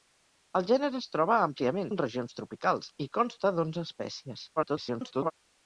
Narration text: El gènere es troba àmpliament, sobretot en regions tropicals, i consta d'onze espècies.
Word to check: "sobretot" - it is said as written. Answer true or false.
false